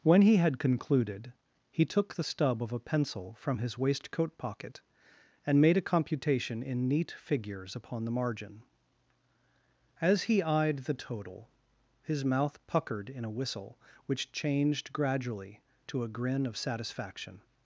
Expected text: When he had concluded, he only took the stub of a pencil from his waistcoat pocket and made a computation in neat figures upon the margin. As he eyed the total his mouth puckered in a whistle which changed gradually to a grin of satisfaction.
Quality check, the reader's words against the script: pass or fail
fail